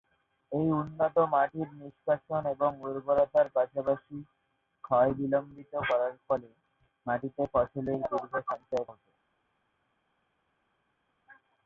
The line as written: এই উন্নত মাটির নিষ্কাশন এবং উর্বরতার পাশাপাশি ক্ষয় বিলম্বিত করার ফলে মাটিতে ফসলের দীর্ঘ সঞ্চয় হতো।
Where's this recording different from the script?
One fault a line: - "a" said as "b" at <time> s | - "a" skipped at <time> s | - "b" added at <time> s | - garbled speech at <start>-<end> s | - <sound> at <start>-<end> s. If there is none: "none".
none